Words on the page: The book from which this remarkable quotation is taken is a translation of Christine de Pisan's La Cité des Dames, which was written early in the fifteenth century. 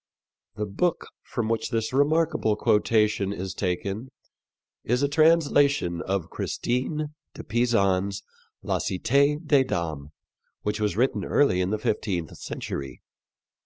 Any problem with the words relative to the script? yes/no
no